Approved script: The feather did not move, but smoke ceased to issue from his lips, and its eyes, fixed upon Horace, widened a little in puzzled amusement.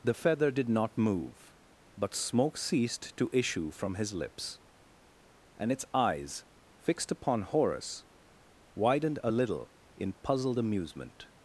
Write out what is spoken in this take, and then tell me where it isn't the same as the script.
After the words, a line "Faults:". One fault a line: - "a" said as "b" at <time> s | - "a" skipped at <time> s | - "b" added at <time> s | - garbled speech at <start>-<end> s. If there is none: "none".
The feather did not move, but smoke ceased to issue from his lips, and its eyes, fixed upon Horace, widened a little in puzzled amusement.
Faults:
none